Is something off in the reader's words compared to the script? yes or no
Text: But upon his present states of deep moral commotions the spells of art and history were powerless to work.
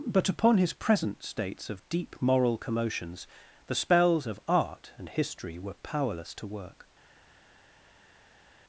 no